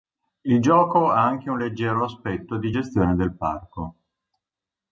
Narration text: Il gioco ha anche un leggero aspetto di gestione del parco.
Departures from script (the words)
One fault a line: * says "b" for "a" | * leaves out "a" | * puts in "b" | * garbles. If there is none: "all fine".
all fine